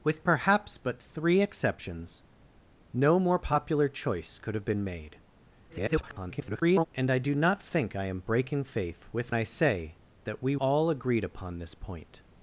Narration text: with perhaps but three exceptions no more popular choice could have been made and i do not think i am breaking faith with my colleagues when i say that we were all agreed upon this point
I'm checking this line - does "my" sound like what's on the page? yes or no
no